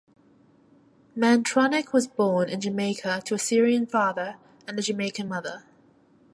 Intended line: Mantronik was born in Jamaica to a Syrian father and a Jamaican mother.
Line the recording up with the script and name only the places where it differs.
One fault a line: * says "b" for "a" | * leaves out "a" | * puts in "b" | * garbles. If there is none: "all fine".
all fine